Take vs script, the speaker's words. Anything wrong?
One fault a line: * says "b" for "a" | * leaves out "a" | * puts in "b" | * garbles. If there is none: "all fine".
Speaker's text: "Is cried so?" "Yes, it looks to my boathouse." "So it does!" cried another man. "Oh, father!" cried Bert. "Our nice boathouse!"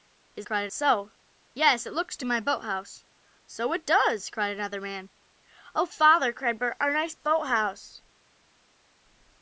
all fine